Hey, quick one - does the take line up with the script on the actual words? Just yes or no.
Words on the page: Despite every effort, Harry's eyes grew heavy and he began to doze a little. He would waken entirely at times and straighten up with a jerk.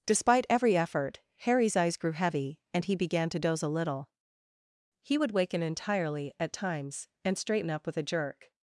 yes